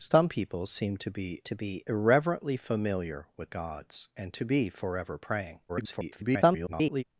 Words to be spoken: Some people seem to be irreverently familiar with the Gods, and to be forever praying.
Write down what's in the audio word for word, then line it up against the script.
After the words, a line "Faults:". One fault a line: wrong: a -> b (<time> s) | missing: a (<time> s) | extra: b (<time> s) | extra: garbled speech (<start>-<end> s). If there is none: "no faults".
Some people seem to be to be irreverently familiar with Gods, and to be forever praying. [garbled]
Faults:
extra: to be (1.4 s)
missing: the (3.5 s)
extra: garbled speech (5.7-7.0 s)